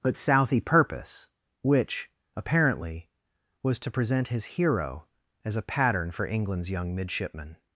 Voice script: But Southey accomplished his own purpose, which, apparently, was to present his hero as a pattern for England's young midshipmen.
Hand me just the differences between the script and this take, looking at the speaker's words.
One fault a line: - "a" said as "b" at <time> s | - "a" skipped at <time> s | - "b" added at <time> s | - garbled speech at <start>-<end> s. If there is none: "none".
- "accomplished his own" skipped at 0.6 s